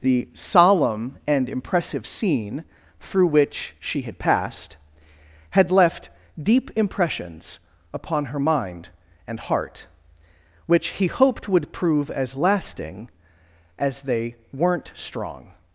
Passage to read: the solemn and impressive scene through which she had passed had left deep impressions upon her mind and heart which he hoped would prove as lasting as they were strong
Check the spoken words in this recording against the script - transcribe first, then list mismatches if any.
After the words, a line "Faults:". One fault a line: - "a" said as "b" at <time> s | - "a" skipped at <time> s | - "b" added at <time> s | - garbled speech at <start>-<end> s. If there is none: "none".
the solemn and impressive scene through which she had passed had left deep impressions upon her mind and heart which he hoped would prove as lasting as they weren't strong
Faults:
- "were" said as "weren't" at 14.5 s